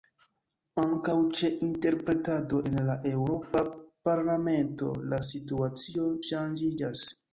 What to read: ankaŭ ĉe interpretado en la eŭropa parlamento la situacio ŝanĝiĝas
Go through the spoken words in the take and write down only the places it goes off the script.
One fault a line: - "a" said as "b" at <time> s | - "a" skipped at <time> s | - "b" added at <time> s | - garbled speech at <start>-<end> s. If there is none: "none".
none